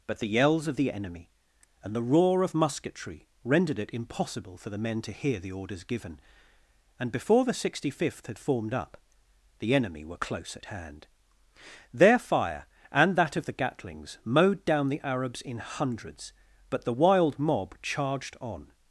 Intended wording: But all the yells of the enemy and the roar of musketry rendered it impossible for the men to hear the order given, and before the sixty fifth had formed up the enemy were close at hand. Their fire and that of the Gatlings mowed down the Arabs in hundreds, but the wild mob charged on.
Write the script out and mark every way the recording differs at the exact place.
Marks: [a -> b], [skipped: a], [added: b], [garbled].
But [skipped: all] the yells of the enemy and the roar of musketry rendered it impossible for the men to hear the [order -> orders] given, and before the sixty fifth had formed up the enemy were close at hand. Their fire and that of the Gatlings mowed down the Arabs in hundreds, but the wild mob charged on.